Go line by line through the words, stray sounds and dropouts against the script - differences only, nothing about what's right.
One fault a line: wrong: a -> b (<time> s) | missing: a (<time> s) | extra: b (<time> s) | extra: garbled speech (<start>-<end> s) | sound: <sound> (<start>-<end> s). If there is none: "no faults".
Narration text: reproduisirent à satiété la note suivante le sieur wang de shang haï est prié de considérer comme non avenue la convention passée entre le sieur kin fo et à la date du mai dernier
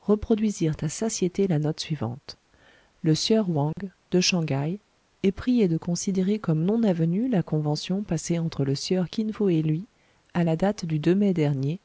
sound: dropout (3.7-3.8 s)
extra: lui (9.6 s)